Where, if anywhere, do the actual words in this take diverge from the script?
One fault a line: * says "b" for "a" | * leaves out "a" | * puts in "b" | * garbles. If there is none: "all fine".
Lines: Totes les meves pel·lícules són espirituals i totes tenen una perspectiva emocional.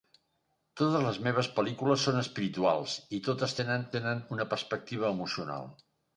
* puts in "tenen"